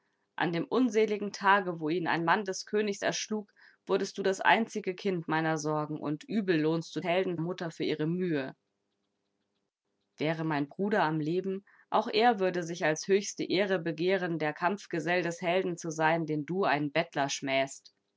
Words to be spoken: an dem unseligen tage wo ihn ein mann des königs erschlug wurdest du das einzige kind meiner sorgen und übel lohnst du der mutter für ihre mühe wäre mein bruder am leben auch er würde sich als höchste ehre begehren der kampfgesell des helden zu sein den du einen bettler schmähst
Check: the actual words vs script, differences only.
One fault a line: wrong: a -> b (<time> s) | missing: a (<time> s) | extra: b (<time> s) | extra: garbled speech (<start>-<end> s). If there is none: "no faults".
wrong: der -> helden (7.0 s)